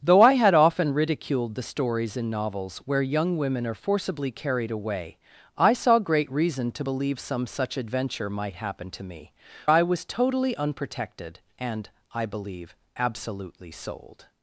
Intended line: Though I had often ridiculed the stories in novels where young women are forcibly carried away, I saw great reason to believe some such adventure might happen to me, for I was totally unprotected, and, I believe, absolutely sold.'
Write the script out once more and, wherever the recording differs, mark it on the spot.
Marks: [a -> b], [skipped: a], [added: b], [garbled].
Though I had often ridiculed the stories in novels where young women are forcibly carried away, I saw great reason to believe some such adventure might happen to me, [skipped: for] I was totally unprotected, and, I believe, absolutely sold.'